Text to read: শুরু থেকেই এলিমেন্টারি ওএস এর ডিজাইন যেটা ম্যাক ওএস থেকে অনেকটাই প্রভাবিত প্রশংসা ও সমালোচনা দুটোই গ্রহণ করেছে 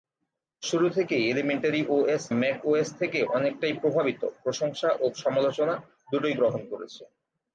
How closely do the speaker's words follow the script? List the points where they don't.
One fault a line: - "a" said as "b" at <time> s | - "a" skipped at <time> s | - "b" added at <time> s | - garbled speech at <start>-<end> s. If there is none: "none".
- "এর ডিজাইন যেটা" skipped at 2.2 s